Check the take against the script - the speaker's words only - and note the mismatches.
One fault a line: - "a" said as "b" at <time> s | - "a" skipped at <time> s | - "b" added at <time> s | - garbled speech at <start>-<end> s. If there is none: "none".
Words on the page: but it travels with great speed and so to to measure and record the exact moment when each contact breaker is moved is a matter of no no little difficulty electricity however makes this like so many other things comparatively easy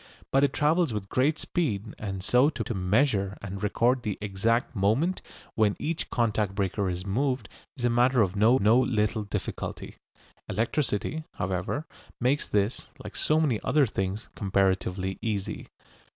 none